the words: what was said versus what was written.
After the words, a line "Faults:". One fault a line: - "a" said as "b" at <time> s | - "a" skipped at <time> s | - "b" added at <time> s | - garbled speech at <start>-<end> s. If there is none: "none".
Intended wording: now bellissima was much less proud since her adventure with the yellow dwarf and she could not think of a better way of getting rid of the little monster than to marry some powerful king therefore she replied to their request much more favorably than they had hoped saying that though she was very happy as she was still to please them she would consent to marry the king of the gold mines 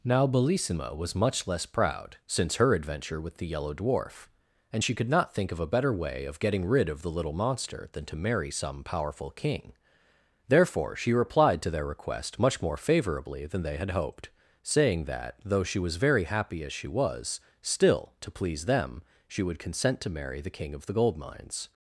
now bellissima was much less proud since her adventure with the yellow dwarf and she could not think of a better way of getting rid of the little monster than to marry some powerful king therefore she replied to their request much more favorably than they had hoped saying that though she was very happy as she was still to please them she would consent to marry the king of the gold mines
Faults:
none